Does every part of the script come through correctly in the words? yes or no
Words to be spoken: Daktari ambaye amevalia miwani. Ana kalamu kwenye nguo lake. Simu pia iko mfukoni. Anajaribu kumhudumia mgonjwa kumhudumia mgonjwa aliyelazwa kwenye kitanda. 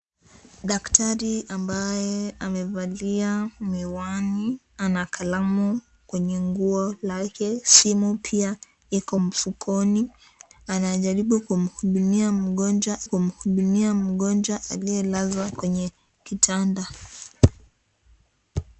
yes